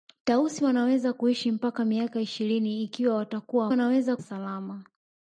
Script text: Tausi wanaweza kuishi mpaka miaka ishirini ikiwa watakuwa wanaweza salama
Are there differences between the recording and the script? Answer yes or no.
no